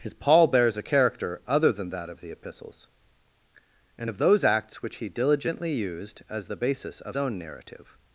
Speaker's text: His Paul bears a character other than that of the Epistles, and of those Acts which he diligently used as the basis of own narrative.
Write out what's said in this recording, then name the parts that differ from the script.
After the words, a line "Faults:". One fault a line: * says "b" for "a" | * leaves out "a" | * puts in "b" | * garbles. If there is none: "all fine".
His Paul bears a character other than that of the Epistles, and of those Acts which he diligently used as the basis of own narrative.
Faults:
all fine